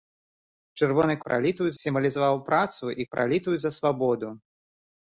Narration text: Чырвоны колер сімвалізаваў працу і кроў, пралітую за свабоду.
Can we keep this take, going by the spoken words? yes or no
no